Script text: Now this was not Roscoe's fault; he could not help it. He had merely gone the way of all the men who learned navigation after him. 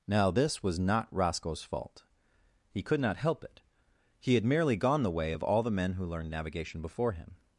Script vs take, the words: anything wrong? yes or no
yes